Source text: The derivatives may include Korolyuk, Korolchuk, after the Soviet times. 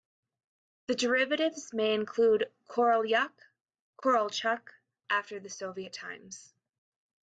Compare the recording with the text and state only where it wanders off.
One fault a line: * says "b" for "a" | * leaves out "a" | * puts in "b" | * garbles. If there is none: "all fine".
all fine